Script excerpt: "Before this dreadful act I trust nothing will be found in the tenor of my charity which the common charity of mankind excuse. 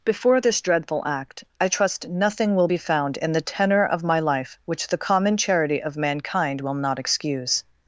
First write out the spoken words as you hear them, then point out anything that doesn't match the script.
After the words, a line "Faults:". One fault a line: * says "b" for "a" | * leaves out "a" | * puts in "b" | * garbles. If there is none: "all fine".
"Before this dreadful act I trust nothing will be found in the tenor of my life which the common charity of mankind will not excuse.
Faults:
* says "life" for "charity"
* puts in "will not"